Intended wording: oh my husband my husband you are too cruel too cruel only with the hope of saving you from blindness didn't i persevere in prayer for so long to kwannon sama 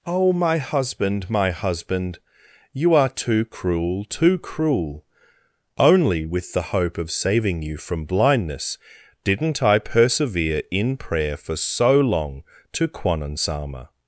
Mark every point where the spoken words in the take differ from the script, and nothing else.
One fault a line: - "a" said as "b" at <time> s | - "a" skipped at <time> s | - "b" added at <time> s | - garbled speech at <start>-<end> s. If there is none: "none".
none